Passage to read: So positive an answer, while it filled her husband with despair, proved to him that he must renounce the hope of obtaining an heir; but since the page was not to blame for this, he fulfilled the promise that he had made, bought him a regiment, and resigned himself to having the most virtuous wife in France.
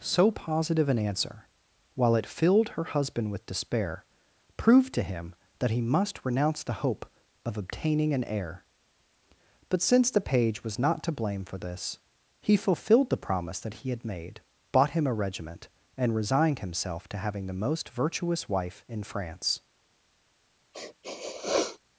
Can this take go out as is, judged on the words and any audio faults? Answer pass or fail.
fail